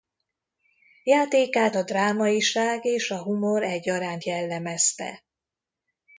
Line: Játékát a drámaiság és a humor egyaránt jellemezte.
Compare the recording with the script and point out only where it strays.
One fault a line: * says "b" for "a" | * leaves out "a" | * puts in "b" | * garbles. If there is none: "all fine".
all fine